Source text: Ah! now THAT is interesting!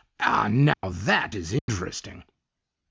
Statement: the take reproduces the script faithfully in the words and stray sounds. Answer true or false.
false